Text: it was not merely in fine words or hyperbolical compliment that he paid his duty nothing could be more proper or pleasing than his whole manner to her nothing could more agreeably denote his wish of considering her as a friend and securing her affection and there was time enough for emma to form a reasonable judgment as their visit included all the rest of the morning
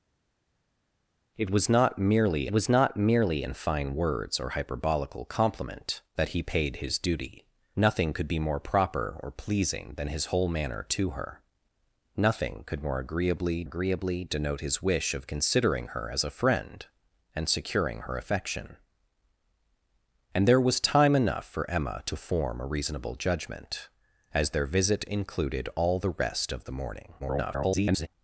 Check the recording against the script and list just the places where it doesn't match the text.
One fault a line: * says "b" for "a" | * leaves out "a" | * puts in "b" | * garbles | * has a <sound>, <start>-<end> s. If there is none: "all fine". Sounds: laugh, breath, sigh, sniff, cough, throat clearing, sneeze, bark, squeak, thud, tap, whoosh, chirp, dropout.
* puts in "was not merely"
* puts in "agreeably"
* garbles